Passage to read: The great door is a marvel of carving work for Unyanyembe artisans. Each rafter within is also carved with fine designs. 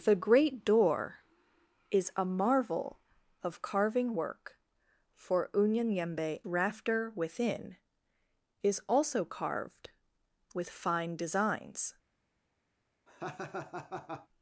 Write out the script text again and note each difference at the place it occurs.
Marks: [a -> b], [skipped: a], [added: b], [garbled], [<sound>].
The great door is a marvel of carving work for Unyanyembe [skipped: artisans. Each] rafter within is also carved with fine designs. [laugh]